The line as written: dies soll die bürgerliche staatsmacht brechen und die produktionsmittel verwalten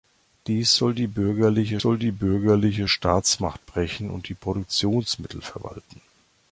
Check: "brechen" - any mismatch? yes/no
no